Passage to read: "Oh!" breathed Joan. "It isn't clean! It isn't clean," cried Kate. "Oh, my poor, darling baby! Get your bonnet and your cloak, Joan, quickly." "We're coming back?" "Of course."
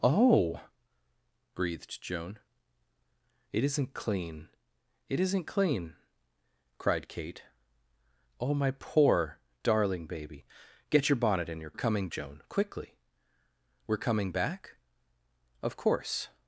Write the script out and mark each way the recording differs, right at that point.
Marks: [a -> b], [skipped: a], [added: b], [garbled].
"Oh!" breathed Joan. "It isn't clean! It isn't clean," cried Kate. "Oh, my poor, darling baby! Get your bonnet and your [cloak, -> coming] Joan, quickly." "We're coming back?" "Of course."